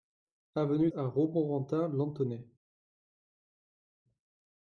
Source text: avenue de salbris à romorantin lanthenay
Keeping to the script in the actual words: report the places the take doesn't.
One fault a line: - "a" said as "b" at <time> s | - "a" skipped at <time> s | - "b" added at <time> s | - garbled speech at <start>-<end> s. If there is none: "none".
- "de salbris" skipped at 0.9 s